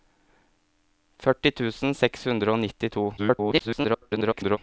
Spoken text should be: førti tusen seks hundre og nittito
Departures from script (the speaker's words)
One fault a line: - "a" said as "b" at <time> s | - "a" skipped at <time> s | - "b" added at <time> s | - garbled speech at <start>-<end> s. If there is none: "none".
- garbled speech at 3.2-4.6 s